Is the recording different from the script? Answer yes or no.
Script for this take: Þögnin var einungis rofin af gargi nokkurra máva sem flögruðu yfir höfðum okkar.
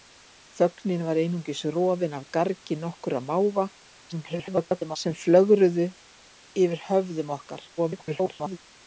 yes